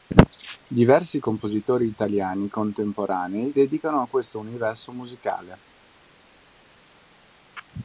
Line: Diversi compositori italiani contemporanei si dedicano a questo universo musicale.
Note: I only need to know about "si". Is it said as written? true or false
false